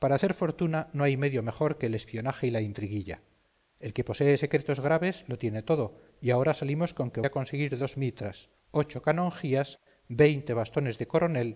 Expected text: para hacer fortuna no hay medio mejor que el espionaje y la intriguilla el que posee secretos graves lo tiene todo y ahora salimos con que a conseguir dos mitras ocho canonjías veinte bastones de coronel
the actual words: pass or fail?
pass